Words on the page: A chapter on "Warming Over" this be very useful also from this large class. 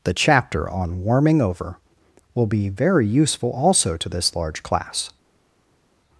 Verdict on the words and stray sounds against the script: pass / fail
fail